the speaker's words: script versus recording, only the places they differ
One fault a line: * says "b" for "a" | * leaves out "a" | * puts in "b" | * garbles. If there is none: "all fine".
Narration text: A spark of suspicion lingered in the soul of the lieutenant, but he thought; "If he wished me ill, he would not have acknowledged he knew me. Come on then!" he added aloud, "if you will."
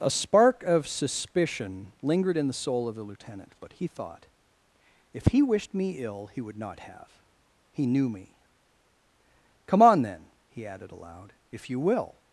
* leaves out "acknowledged"